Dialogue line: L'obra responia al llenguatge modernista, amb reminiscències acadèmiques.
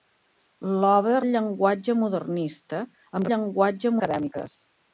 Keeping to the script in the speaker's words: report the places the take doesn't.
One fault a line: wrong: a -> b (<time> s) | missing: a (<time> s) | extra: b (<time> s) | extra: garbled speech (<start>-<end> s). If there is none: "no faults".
missing: responia (1.2 s)
wrong: reminiscències -> llenguatge (3.3 s)